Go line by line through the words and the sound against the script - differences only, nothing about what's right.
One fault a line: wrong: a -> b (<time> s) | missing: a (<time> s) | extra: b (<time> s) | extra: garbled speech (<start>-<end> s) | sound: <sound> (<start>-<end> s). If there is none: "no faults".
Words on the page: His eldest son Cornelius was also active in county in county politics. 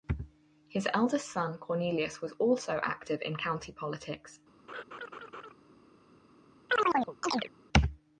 missing: in county (3.7 s)
sound: laugh (4.7-5.5 s)
sound: chirp (6.7-7.5 s)